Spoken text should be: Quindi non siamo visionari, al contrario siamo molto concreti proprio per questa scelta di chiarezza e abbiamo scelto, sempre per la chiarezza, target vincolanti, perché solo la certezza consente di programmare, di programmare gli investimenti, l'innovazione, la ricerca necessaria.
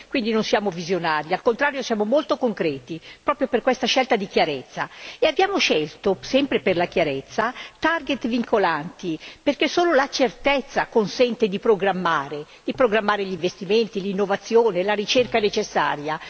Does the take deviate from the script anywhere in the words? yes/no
no